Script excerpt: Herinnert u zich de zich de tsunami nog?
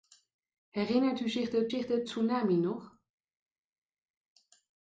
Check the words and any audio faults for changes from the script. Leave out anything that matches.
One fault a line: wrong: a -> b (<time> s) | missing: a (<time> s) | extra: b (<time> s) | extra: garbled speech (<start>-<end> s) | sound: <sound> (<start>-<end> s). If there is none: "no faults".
no faults